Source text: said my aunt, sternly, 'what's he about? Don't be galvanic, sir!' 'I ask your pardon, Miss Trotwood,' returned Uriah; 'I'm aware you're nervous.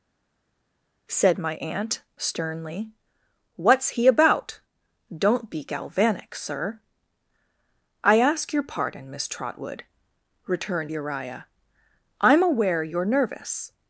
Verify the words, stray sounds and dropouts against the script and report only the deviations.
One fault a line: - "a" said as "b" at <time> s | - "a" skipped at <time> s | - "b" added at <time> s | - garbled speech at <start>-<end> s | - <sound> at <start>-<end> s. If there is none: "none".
none